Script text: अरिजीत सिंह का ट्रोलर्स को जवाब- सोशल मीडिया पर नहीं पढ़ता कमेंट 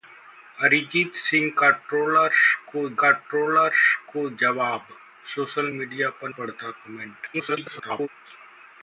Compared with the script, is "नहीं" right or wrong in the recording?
wrong